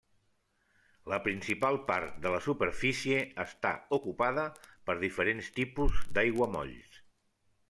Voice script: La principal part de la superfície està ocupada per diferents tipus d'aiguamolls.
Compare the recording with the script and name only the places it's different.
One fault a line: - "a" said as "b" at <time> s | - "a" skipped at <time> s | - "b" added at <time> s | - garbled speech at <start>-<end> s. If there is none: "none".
none